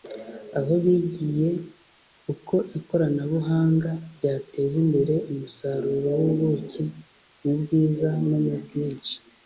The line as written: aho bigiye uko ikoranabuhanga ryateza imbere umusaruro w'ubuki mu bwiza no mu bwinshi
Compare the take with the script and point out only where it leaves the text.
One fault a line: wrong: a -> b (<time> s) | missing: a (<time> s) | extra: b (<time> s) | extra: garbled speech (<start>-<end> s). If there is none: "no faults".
no faults